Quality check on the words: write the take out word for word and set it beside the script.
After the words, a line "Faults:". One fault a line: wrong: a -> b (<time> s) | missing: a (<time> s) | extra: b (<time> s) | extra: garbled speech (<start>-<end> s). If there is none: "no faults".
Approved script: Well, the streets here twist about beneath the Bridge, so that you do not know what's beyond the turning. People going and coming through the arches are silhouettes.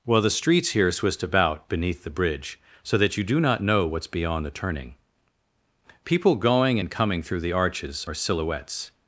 Well, the streets here twist about beneath the Bridge, so that you do not know what's beyond the turning. People going and coming through the arches are silhouettes.
Faults:
no faults